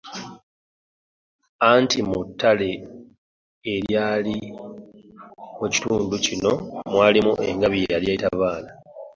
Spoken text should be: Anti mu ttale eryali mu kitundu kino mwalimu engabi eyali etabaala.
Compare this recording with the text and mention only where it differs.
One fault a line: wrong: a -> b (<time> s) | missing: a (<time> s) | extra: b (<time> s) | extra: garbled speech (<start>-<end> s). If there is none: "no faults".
no faults